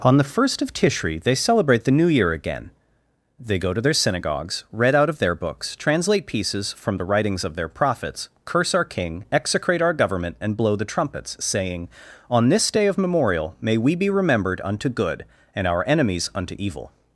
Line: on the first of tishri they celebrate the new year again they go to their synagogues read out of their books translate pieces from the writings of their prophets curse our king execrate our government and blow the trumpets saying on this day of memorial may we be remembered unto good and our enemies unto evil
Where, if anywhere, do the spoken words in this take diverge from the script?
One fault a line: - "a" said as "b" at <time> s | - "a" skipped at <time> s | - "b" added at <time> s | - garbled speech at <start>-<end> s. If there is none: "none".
none